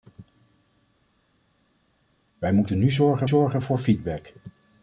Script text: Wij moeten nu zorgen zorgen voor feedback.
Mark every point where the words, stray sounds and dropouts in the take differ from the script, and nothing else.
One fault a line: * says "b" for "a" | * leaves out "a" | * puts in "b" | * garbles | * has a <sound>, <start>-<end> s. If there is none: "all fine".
all fine